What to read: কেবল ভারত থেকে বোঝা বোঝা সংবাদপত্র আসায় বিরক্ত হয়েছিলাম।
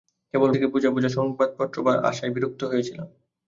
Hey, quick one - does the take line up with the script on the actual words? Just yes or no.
no